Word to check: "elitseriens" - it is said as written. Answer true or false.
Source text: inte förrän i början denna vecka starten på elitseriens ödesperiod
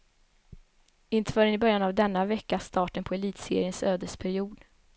true